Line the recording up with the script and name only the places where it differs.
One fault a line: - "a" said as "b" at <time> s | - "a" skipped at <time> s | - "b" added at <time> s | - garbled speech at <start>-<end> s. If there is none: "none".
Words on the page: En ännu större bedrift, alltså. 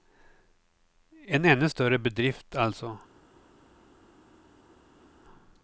none